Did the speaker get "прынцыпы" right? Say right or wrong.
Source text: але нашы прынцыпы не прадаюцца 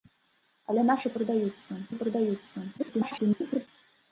wrong